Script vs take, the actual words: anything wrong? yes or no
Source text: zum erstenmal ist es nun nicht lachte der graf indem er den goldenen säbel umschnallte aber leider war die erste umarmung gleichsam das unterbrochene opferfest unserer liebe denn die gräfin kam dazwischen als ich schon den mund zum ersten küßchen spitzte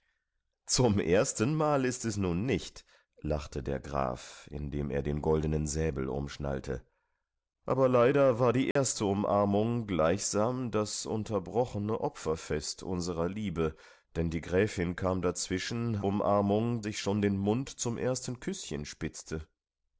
yes